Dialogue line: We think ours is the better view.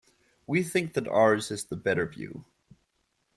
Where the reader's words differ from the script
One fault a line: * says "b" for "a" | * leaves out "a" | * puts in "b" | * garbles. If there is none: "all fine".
* puts in "that"